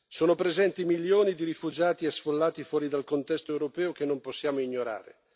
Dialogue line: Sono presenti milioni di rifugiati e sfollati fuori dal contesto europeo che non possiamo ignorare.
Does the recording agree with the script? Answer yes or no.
yes